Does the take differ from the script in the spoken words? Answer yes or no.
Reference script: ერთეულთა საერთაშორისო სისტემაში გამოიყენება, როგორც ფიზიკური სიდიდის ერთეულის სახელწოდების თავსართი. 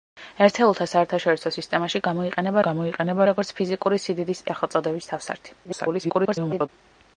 yes